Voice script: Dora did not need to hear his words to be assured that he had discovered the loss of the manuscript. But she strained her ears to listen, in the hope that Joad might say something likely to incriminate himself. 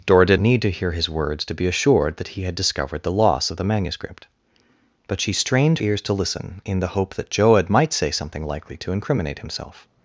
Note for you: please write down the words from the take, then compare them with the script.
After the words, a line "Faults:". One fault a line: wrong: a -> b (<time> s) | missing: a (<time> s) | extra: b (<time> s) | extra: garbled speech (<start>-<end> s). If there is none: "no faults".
Dora did need to hear his words to be assured that he had discovered the loss of the manuscript. But she strained ears to listen, in the hope that Joad might say something likely to incriminate himself.
Faults:
missing: not (0.4 s)
missing: her (5.8 s)